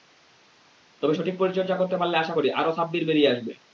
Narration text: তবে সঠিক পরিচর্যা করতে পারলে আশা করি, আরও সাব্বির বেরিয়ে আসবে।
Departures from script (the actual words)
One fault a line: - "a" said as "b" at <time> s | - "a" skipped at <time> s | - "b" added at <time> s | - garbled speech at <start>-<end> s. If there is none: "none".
none